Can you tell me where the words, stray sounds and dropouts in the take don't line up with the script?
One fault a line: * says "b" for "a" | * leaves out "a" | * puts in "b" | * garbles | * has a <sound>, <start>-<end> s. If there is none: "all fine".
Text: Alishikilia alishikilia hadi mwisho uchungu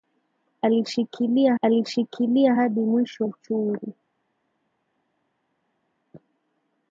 all fine